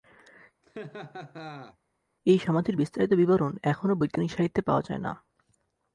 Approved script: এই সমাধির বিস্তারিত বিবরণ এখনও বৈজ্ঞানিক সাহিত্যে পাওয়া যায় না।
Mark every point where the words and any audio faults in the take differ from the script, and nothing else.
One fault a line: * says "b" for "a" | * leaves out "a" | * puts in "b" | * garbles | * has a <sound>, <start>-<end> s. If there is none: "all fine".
* has a laugh, 0.6-1.8 s